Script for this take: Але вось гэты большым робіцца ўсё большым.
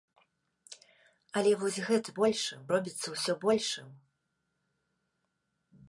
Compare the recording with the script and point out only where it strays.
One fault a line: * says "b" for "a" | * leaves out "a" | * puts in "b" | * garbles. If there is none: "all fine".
all fine